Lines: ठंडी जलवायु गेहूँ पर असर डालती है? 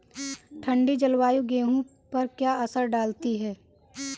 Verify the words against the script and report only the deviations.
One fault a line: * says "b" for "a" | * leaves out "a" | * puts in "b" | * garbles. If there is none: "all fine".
* puts in "क्या"